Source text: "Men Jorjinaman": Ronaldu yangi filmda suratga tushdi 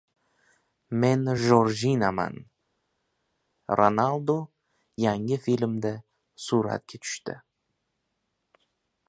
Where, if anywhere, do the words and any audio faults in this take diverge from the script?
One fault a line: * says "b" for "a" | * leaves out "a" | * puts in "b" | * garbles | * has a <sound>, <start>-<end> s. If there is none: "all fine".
all fine